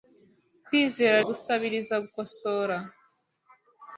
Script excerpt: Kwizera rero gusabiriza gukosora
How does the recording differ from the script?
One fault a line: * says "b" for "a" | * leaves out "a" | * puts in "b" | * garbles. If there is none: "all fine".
* leaves out "rero"